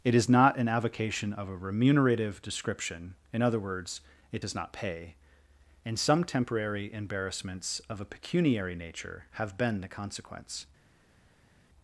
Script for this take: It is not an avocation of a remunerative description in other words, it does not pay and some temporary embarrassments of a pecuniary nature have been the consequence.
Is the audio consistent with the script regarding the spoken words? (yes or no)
yes